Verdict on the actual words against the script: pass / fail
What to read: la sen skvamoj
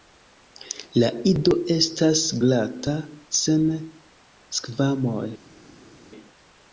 fail